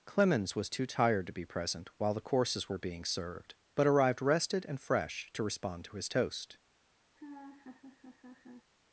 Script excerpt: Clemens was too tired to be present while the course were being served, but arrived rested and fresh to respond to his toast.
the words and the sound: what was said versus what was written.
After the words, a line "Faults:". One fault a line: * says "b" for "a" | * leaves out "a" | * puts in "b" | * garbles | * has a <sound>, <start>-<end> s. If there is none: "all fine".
Clemens was too tired to be present while the courses were being served, but arrived rested and fresh to respond to his toast.
Faults:
* says "courses" for "course"
* has a laugh, 7.1-8.7 s